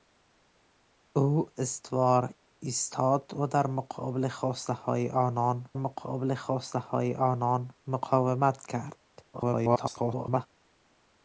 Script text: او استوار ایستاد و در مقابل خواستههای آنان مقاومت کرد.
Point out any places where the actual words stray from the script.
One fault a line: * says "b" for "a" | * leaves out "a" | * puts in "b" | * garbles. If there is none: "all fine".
* puts in "مقابل خواستههای آنان"
* garbles